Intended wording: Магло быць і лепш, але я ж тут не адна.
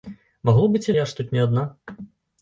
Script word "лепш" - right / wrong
wrong